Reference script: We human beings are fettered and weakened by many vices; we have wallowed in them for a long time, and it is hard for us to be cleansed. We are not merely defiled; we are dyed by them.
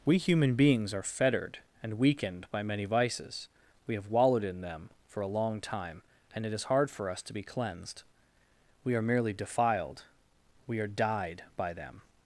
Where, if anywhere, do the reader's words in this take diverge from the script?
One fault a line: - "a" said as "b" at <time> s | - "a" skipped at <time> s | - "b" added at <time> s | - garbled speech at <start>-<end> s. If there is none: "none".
- "not" skipped at 9.0 s